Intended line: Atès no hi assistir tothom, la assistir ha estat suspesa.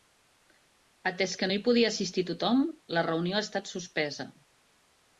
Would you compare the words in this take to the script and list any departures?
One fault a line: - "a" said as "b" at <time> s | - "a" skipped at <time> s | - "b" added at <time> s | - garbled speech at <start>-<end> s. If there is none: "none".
- "que" added at 1.4 s
- "podia" added at 1.7 s
- "assistir" said as "reunió" at 3.1 s